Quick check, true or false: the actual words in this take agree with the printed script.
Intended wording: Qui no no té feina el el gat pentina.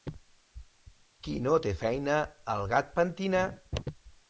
false